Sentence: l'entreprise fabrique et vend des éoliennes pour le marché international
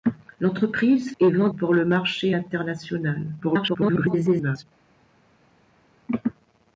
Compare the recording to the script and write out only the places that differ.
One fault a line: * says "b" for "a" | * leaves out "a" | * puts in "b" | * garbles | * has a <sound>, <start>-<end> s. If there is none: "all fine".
* leaves out "fabrique"
* leaves out "des éoliennes"
* garbles